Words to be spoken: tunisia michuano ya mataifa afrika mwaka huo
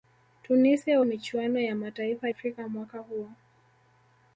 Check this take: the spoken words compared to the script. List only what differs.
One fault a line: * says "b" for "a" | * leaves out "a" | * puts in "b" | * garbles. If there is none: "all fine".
all fine